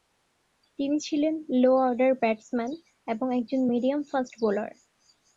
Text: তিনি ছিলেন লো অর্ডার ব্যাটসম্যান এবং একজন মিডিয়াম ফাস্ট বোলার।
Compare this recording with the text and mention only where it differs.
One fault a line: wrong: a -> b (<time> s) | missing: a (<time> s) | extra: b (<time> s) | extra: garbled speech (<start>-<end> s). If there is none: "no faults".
no faults